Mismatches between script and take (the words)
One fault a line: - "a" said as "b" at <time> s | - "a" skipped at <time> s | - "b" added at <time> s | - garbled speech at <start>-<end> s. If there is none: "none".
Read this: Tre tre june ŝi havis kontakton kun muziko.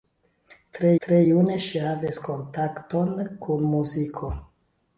none